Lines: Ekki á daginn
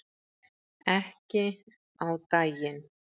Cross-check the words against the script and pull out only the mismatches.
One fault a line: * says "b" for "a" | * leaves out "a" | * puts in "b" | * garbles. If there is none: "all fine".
all fine